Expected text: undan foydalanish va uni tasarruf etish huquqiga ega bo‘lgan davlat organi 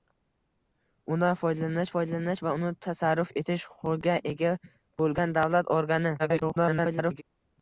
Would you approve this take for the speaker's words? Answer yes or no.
no